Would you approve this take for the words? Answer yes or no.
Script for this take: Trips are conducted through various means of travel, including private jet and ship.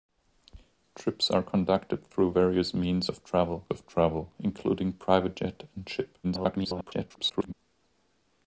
no